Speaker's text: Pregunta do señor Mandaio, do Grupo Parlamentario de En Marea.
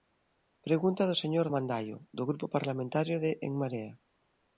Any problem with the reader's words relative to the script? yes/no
no